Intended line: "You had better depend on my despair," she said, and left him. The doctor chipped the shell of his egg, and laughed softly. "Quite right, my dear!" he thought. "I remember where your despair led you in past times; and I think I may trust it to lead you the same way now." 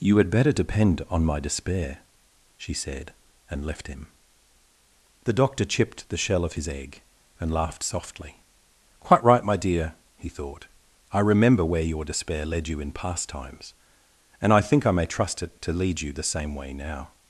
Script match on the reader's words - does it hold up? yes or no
yes